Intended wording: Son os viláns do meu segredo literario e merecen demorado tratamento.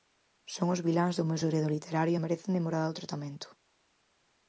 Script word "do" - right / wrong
right